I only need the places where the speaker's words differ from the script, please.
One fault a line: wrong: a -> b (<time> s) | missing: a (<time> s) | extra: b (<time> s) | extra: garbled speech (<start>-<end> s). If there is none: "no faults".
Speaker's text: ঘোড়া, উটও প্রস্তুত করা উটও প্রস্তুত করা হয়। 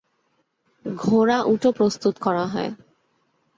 missing: উটও প্রস্তুত করা (2.4 s)